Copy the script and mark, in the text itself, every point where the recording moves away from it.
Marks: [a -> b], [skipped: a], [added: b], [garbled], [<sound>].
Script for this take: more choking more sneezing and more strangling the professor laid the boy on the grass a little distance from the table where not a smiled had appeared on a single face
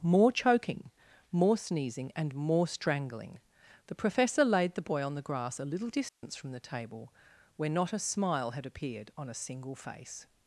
more choking more sneezing and more strangling the professor laid the boy on the grass a little distance [dropout] from the table where not a [smiled -> smile] had appeared on a single face